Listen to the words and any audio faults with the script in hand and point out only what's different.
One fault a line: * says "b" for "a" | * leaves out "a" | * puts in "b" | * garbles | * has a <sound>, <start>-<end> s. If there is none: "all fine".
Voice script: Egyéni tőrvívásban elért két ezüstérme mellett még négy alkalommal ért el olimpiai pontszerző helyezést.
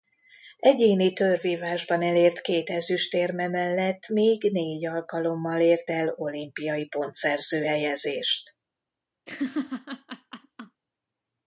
* has a laugh, 9.3-10.8 s